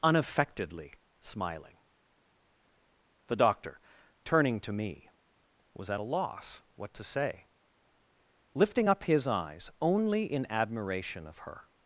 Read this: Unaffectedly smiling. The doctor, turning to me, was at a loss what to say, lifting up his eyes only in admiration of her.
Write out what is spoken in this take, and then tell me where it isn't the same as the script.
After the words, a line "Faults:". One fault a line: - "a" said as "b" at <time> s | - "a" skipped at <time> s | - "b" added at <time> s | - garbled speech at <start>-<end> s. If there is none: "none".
Unaffectedly smiling. The doctor, turning to me, was at a loss what to say, lifting up his eyes only in admiration of her.
Faults:
none